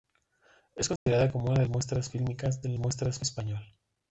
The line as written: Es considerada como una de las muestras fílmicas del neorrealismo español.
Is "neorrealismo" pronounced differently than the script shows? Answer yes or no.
yes